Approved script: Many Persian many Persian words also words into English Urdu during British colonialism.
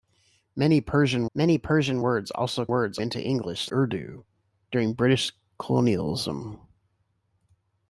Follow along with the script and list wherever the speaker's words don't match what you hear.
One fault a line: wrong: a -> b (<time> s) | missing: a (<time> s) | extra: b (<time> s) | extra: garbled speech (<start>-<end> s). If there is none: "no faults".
no faults